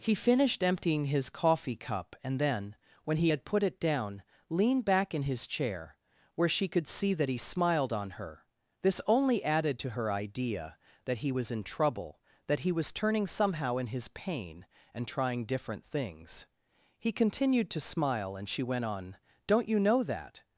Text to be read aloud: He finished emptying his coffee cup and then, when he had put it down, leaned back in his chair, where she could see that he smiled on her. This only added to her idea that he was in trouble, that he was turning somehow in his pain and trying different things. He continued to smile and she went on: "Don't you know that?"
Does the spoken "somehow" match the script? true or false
true